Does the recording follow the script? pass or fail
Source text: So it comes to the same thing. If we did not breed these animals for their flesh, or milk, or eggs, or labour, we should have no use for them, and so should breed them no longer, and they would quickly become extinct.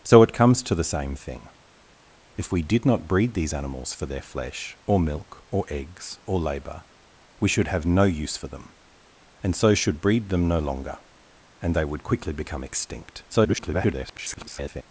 fail